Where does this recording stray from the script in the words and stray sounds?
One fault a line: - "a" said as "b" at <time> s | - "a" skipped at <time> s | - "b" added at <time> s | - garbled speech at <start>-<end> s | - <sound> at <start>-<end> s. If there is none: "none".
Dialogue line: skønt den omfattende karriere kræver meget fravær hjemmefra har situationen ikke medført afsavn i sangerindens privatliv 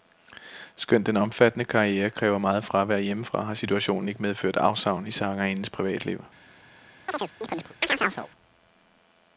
- chirp at 7.1-8.3 s